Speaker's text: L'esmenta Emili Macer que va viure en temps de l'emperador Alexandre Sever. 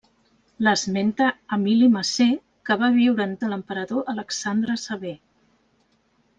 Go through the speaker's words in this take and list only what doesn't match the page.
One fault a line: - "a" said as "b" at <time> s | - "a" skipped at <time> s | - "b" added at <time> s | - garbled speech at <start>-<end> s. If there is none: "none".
- "temps" skipped at 3.4 s